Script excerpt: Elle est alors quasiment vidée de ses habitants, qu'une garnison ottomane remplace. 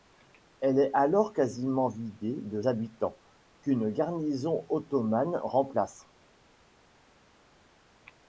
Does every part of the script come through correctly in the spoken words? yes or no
no